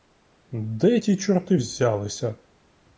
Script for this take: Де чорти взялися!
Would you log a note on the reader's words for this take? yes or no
yes